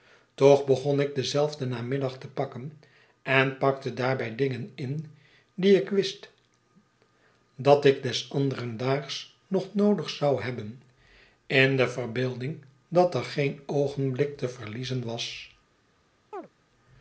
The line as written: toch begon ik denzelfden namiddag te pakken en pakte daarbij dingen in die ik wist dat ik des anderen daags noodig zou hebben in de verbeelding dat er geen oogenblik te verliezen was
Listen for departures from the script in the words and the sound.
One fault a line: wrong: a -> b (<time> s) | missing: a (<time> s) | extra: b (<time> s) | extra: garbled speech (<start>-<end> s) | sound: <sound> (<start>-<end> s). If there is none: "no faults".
extra: nog (9.5 s)
sound: chirp (16.3-16.5 s)